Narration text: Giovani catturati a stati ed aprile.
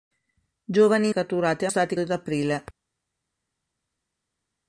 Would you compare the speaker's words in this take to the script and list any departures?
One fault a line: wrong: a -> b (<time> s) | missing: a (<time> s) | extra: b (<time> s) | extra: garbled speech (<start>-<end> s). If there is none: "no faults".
no faults